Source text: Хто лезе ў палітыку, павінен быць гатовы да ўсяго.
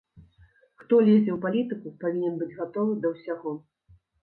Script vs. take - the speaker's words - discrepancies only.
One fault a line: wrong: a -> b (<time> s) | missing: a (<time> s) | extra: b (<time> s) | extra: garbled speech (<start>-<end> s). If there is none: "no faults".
no faults